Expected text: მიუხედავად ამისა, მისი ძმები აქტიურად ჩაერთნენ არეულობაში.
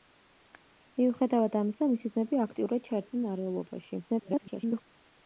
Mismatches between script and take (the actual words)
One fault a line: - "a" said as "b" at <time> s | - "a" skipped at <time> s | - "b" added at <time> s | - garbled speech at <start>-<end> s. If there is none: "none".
- garbled speech at 4.1-4.8 s